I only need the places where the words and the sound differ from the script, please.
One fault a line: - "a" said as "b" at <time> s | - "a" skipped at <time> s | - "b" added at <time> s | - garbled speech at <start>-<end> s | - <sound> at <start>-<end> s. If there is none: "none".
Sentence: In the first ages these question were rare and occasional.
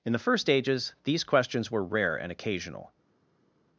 - "question" said as "questions" at 1.2 s